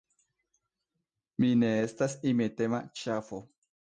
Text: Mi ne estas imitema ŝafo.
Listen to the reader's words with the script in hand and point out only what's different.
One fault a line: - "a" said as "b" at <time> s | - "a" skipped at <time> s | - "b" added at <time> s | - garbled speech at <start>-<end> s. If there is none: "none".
none